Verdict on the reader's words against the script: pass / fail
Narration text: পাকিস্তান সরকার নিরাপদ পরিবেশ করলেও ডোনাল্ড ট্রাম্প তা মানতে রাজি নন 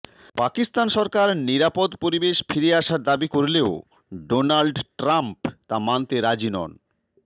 fail